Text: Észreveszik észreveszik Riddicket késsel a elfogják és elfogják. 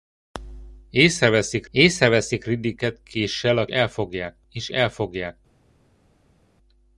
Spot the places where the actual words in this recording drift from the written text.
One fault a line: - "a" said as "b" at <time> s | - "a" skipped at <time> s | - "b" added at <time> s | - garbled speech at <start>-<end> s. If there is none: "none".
none